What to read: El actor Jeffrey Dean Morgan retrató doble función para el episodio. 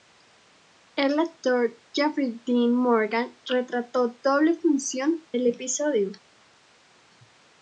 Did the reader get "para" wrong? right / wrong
wrong